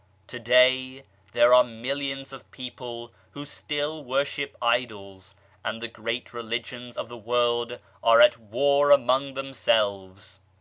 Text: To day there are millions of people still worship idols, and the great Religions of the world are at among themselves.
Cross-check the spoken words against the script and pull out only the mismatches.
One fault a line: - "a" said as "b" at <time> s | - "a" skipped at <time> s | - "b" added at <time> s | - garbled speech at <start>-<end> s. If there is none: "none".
- "who" added at 3.3 s
- "war" added at 8.4 s